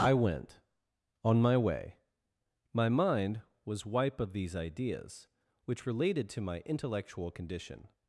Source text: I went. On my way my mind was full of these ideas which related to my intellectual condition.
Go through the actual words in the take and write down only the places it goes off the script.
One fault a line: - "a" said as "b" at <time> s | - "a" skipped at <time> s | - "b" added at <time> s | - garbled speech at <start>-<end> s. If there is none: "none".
- "full" said as "wipe" at 3.9 s